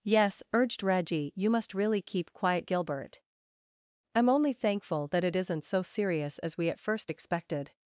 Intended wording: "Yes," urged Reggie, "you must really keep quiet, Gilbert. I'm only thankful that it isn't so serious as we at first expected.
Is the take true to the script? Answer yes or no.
yes